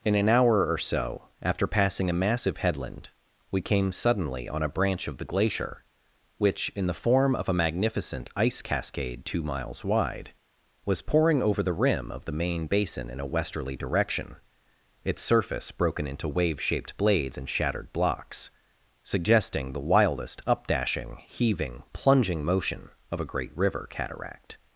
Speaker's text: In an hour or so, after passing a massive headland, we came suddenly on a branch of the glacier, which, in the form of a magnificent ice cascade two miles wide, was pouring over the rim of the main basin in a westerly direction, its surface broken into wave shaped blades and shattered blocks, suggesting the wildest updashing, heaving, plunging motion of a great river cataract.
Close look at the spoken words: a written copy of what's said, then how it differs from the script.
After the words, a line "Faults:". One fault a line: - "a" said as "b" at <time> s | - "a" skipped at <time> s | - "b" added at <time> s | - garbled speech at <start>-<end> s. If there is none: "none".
In an hour or so, after passing a massive headland, we came suddenly on a branch of the glacier, which, in the form of a magnificent ice cascade two miles wide, was pouring over the rim of the main basin in a westerly direction, its surface broken into wave shaped blades and shattered blocks, suggesting the wildest updashing, heaving, plunging motion of a great river cataract.
Faults:
none